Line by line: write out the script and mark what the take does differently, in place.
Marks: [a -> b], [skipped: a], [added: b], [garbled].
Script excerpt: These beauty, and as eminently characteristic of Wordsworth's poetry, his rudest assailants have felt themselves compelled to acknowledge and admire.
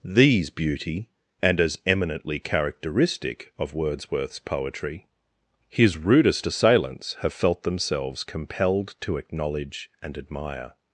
These beauty, and as eminently characteristic of Wordsworth's poetry, his rudest assailants have felt themselves compelled to acknowledge and admire.